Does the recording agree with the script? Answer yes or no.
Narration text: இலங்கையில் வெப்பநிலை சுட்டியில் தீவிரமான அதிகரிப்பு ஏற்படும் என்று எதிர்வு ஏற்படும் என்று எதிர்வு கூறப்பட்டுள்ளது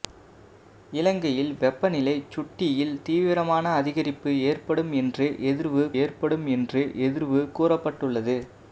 yes